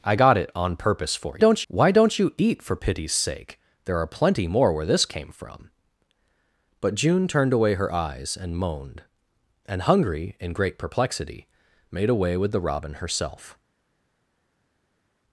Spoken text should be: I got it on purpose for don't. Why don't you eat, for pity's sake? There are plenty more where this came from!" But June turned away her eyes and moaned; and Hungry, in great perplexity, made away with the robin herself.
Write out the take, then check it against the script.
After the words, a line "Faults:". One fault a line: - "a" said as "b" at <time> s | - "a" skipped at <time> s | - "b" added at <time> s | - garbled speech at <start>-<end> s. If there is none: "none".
I got it on purpose for don't. Why don't you eat, for pity's sake? There are plenty more where this came from!" But June turned away her eyes and moaned; and Hungry, in great perplexity, made away with the robin herself.
Faults:
none